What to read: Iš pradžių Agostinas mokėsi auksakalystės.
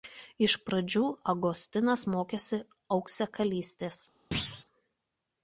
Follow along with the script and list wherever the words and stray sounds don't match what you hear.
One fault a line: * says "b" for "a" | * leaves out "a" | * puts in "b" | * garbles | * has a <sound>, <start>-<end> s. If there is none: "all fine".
* has a thud, 4.3-4.6 s